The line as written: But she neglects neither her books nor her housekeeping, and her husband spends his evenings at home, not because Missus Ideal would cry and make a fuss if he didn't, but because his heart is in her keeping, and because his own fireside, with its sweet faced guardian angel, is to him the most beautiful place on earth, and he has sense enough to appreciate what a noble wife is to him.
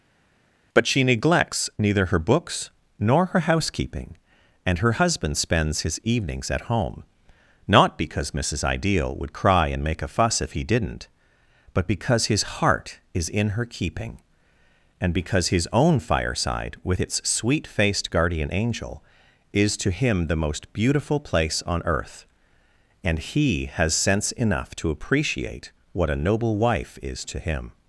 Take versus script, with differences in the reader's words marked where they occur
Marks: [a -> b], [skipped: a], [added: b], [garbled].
But she neglects neither her books nor her housekeeping, and her husband spends his evenings at home, not because Missus Ideal would cry and make a fuss if he didn't, but because his heart is in her keeping, and because his own fireside, with its sweet faced guardian angel, is to him the most beautiful place on earth, and he has sense enough to appreciate what a noble wife is to him.